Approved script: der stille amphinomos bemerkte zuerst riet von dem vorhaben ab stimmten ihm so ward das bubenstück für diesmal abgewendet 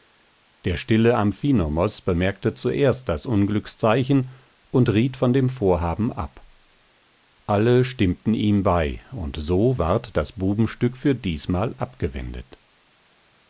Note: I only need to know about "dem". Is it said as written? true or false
true